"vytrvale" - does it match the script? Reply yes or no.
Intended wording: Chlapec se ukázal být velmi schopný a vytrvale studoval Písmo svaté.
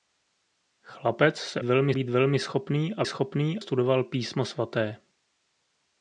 no